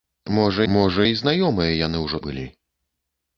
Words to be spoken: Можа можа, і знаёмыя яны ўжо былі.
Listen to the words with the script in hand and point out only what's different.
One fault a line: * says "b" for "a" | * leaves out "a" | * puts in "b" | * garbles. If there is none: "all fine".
all fine